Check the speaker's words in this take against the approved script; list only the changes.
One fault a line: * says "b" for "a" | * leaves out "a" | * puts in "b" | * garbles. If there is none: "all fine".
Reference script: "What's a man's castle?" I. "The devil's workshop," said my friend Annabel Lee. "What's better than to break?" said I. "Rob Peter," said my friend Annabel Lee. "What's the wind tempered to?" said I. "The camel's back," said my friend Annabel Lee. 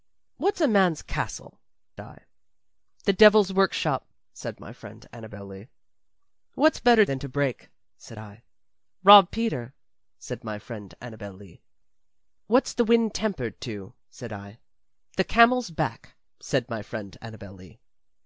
all fine